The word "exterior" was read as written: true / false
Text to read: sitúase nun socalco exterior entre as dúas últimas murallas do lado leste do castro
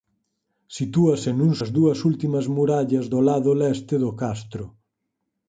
false